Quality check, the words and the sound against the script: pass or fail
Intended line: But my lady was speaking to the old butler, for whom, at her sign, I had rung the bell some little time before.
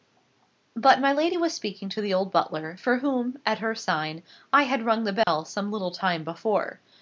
fail